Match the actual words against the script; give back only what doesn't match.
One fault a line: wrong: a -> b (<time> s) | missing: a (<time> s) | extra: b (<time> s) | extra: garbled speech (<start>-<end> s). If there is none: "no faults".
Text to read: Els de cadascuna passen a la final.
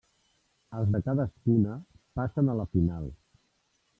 no faults